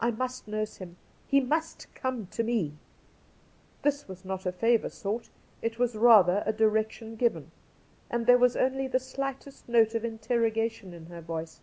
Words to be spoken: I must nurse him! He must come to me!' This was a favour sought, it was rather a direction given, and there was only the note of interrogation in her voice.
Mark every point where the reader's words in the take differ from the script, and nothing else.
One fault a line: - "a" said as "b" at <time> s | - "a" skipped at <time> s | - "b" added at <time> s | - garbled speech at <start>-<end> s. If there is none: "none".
- "not" added at 4.2 s
- "slightest" added at 9.0 s